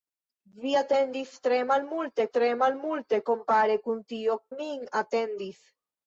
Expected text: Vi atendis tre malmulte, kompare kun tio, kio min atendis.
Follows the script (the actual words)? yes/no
no